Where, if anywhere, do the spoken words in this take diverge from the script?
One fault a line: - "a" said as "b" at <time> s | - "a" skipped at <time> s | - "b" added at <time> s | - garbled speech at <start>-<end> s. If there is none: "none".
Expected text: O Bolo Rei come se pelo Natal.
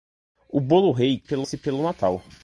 - "come" said as "pelo" at 1.2 s